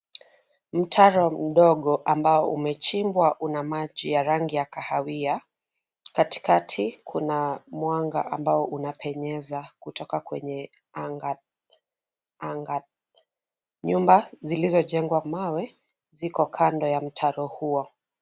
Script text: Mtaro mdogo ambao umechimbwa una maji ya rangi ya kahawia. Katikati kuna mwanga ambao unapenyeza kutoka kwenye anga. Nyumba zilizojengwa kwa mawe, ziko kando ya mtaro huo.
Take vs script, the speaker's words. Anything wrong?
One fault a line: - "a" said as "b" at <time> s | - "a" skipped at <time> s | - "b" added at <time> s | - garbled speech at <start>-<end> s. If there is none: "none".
- "anga" added at 12.4 s
- "kwa" skipped at 15.2 s